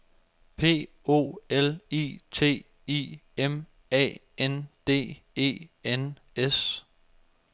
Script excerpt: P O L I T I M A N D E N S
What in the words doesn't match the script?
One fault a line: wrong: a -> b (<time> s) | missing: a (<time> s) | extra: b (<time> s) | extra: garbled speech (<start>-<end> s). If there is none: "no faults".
no faults